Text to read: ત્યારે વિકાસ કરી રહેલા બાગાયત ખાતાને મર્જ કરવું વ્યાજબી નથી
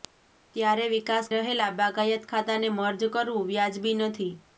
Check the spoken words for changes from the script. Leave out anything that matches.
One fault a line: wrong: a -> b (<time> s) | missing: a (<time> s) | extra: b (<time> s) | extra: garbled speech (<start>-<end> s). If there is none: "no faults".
missing: કરી (1.3 s)